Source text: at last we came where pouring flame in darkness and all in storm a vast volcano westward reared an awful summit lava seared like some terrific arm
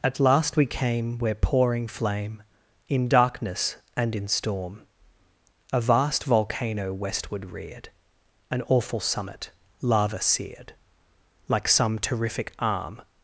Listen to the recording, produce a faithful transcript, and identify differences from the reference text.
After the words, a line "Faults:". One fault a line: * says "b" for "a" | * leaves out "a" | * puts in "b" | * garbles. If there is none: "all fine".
at last we came where pouring flame in darkness and in storm a vast volcano westward reared an awful summit lava seared like some terrific arm
Faults:
* leaves out "all"